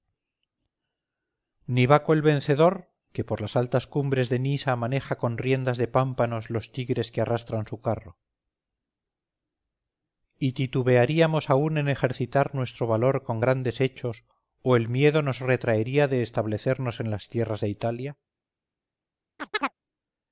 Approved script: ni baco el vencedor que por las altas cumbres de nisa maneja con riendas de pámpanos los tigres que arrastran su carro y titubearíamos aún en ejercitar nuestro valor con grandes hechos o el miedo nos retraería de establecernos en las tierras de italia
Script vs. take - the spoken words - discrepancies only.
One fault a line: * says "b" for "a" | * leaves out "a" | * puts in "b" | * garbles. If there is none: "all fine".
all fine